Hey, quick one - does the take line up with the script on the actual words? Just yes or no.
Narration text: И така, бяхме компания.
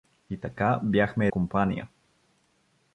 yes